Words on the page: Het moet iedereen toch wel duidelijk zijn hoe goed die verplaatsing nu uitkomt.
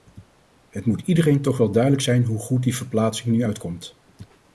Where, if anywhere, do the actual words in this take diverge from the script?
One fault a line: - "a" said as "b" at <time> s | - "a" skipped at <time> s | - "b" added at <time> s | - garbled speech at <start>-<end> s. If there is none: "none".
none